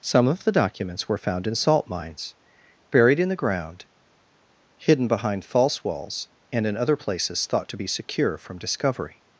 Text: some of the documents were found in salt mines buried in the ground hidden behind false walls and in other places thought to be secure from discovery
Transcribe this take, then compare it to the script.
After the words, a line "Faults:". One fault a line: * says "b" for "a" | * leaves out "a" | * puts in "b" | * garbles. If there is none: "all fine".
some of the documents were found in salt mines buried in the ground hidden behind false walls and in other places thought to be secure from discovery
Faults:
all fine